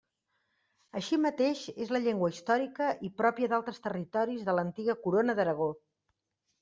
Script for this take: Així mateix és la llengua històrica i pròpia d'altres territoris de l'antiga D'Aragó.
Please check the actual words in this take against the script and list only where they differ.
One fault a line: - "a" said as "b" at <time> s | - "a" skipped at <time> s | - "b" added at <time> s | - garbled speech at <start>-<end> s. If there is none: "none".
- "Corona" added at 5.1 s